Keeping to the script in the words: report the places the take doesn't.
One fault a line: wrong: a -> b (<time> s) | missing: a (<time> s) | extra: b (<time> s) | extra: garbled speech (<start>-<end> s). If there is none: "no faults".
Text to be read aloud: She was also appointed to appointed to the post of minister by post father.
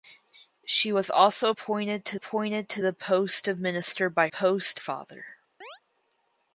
no faults